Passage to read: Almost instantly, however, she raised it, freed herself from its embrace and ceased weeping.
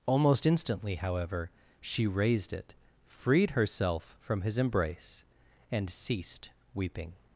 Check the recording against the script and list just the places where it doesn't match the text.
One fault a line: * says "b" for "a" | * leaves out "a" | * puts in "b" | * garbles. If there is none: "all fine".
* says "his" for "its"